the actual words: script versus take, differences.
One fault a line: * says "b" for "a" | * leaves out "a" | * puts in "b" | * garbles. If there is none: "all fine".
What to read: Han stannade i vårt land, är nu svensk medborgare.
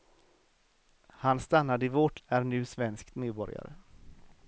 * leaves out "land"